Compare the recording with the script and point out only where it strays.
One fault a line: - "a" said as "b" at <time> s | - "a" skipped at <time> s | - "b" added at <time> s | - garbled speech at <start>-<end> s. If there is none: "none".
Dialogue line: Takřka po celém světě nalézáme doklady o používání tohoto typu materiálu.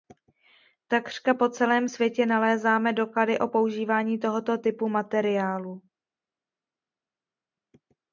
none